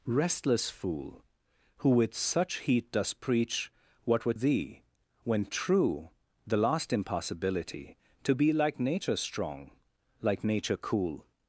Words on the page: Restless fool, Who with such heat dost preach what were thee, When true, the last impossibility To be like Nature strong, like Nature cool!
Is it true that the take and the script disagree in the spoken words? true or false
false